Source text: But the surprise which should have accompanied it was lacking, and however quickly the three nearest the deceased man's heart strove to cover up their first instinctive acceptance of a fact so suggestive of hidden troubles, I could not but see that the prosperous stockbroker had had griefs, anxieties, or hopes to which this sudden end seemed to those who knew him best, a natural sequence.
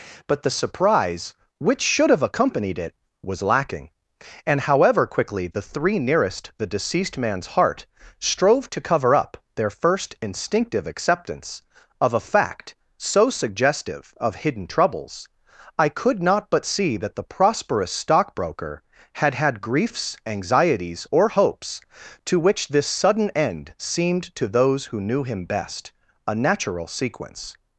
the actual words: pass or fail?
pass